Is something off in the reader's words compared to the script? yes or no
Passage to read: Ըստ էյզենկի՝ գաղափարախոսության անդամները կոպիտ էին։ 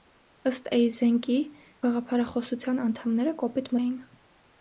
no